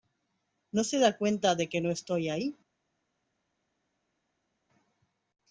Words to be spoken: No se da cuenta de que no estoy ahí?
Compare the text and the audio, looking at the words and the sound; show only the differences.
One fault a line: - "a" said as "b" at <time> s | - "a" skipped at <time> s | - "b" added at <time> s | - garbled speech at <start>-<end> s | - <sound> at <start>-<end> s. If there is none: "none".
none